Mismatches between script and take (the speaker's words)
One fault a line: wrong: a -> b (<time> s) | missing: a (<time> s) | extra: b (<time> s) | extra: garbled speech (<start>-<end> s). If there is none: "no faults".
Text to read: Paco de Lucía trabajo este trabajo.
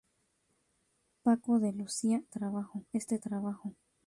no faults